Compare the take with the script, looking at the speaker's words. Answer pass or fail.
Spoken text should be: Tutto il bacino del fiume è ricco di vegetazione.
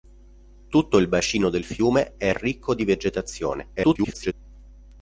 fail